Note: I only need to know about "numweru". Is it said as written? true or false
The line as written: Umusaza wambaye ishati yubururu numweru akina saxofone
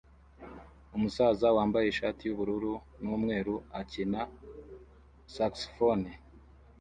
true